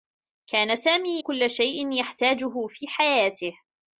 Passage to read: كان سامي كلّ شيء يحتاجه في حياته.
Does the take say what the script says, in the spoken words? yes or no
yes